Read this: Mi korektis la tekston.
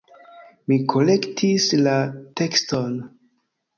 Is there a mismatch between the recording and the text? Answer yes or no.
no